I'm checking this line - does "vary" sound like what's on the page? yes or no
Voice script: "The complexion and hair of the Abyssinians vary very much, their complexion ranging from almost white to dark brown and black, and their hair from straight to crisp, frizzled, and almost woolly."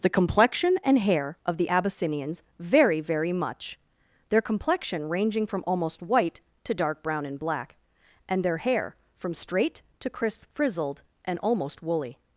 yes